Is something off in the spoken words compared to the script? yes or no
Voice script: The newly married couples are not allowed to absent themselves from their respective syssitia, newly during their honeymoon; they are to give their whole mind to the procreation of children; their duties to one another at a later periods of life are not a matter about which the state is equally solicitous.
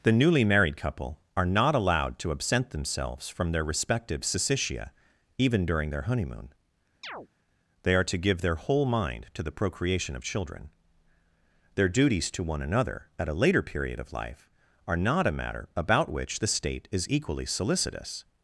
yes